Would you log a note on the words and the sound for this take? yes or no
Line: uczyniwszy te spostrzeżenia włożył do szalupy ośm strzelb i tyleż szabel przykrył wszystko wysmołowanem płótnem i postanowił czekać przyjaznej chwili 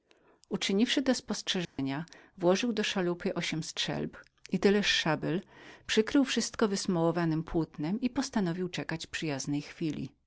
yes